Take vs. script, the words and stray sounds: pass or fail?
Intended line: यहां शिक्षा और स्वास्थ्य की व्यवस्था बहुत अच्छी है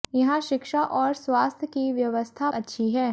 fail